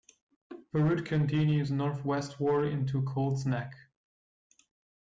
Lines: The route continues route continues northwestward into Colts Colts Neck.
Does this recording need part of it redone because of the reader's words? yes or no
yes